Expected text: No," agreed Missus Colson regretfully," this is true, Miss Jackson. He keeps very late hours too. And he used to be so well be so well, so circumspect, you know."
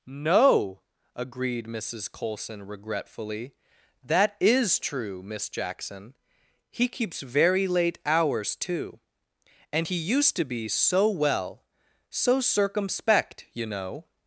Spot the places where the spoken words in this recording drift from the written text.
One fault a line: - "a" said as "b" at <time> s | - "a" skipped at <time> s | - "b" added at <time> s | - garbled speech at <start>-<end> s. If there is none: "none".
- "this" said as "that" at 4.0 s
- "be so well" skipped at 11.6 s